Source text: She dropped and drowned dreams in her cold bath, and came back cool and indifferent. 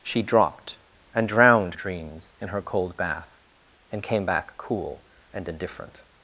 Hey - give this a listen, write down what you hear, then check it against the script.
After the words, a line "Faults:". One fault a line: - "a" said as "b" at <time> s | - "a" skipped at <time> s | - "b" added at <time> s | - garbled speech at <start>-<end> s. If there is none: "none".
She dropped and drowned dreams in her cold bath, and came back cool and indifferent.
Faults:
none